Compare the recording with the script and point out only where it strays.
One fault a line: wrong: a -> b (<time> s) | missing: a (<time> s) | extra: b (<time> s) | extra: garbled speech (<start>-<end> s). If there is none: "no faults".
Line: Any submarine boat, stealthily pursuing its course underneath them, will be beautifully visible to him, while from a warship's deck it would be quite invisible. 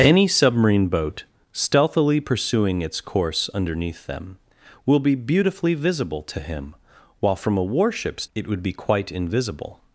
missing: deck (8.2 s)